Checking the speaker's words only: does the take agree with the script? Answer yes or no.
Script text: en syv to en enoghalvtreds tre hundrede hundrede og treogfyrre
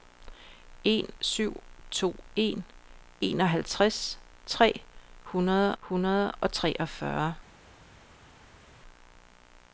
yes